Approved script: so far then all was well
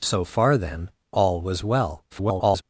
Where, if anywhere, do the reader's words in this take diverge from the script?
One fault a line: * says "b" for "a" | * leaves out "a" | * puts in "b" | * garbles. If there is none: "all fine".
* garbles